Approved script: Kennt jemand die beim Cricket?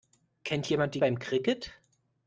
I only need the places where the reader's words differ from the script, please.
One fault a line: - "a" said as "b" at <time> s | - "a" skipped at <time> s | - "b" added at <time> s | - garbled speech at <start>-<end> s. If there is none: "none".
none